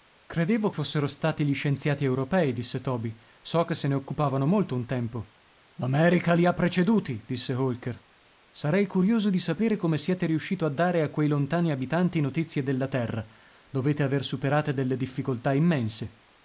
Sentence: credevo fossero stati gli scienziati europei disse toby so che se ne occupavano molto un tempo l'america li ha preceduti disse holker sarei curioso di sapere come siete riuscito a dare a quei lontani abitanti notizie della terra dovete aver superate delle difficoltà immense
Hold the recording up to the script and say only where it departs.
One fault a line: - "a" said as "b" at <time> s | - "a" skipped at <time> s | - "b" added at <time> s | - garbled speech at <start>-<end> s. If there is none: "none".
none